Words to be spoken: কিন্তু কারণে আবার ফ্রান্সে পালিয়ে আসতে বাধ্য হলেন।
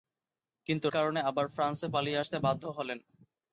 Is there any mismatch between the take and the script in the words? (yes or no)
no